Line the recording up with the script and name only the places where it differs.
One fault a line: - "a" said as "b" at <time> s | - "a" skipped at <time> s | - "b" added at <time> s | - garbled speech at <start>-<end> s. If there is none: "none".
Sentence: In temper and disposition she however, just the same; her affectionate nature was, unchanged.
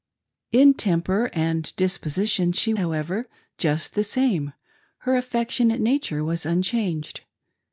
none